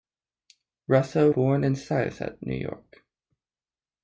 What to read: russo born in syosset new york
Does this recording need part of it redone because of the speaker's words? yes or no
no